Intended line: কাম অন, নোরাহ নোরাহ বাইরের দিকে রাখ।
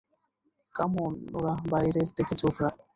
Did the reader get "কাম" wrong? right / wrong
right